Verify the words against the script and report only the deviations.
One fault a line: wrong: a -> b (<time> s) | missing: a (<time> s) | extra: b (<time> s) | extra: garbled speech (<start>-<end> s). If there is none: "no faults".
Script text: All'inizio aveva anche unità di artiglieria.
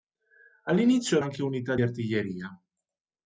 missing: aveva (1.2 s)
missing: di (1.8 s)